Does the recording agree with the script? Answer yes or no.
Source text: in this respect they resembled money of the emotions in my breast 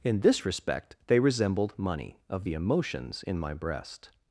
yes